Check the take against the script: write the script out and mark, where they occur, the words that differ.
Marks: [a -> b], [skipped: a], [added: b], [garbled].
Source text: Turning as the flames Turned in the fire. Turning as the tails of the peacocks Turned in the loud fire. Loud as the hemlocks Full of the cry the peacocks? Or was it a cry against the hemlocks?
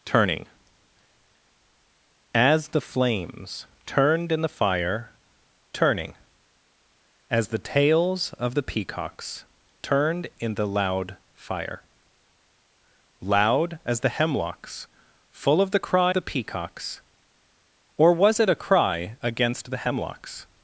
Turning as the flames Turned in the fire. Turning as the tails of the peacocks Turned in the loud fire. Loud as the hemlocks Full of the cry the peacocks? Or was it a cry against the hemlocks?